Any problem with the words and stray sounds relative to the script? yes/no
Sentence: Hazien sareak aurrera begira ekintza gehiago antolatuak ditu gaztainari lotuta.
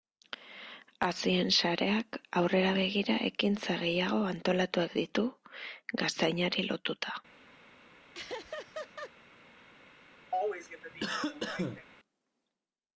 yes